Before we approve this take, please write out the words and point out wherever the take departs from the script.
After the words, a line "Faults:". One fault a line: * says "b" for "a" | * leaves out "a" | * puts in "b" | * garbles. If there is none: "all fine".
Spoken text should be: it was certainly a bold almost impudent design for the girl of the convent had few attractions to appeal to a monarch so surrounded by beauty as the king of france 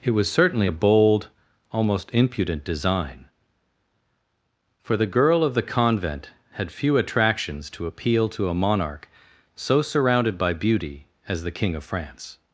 it was certainly a bold almost impudent design for the girl of the convent had few attractions to appeal to a monarch so surrounded by beauty as the king of france
Faults:
all fine